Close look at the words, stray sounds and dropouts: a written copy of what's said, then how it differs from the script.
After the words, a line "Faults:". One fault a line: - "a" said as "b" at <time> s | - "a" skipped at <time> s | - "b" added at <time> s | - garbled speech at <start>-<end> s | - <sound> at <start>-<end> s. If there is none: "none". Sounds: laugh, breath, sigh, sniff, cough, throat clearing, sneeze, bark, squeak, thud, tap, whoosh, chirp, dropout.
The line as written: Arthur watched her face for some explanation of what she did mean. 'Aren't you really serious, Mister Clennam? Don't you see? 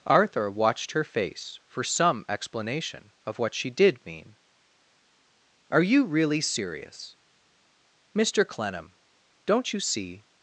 Arthur watched her face for some explanation of what she did mean. 'Are you really serious, Mister Clennam? Don't you see?
Faults:
- "Aren't" said as "Are" at 5.7 s